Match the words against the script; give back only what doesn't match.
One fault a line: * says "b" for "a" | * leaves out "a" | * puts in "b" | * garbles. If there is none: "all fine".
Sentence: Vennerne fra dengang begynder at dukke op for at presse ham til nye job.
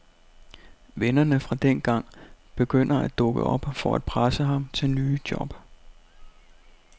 all fine